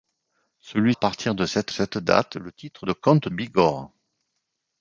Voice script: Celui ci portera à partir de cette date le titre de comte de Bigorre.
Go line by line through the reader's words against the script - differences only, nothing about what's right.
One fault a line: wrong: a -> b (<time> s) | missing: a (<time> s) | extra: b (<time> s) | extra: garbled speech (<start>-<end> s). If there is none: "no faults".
missing: ci portera (0.9 s)
extra: cette (1.7 s)
missing: de (3.3 s)